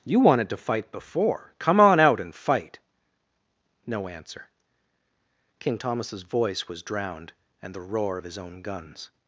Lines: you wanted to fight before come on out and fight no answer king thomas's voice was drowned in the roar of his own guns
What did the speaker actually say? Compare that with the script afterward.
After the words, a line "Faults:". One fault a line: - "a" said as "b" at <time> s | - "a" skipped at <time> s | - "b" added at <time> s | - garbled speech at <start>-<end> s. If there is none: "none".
you wanted to fight before come on out and fight no answer king thomas's voice was drowned and the roar of his own guns
Faults:
- "in" said as "and" at 7.6 s